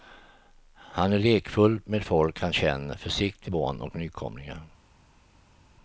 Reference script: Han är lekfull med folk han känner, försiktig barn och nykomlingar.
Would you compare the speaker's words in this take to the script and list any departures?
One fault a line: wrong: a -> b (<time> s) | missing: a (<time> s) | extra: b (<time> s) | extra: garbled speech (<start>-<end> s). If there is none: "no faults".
no faults